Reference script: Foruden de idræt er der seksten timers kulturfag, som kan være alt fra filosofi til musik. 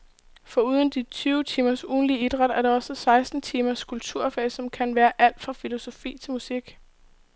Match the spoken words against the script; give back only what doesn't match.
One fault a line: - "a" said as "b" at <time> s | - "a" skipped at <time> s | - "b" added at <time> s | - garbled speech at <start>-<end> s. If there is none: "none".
- "tyve timers ugentlig" added at 1.0 s
- "også" added at 2.7 s